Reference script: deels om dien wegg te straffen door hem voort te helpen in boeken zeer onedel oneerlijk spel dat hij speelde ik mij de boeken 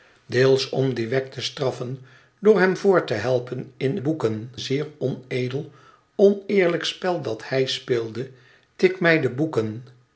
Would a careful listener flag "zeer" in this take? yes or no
no